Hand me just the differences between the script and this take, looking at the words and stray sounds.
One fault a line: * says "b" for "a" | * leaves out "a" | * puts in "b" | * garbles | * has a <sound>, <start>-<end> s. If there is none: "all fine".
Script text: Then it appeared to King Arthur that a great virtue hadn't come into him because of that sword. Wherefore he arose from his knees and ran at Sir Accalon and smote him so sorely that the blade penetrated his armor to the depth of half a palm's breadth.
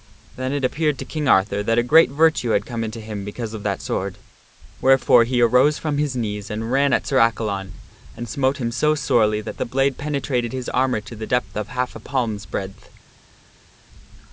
* says "had" for "hadn't"